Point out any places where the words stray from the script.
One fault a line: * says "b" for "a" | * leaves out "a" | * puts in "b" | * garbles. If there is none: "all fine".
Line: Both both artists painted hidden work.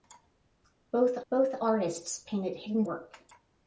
all fine